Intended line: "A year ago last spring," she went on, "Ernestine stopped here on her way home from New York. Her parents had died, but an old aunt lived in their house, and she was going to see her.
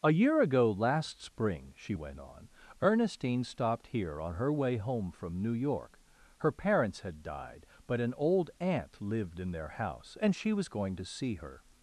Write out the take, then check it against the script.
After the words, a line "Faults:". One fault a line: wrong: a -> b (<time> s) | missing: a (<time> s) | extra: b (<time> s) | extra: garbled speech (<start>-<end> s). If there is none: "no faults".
"A year ago last spring," she went on, "Ernestine stopped here on her way home from New York. Her parents had died, but an old aunt lived in their house, and she was going to see her.
Faults:
no faults